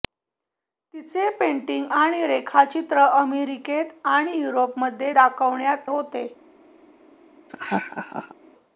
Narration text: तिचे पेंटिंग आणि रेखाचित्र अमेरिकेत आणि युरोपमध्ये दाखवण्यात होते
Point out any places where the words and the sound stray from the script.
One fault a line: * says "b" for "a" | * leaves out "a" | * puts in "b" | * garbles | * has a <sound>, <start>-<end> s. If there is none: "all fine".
* has a laugh, 7.5-8.3 s